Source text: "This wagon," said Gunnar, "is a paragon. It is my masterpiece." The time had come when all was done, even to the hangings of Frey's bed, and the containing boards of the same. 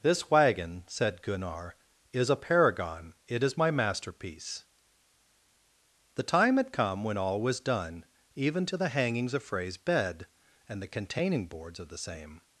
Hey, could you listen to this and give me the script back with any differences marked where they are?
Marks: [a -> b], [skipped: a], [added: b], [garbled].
"This wagon," said Gunnar, "is a paragon. It is my masterpiece." The time had come when all was done, even to the hangings of Frey's bed, and the containing boards of the same.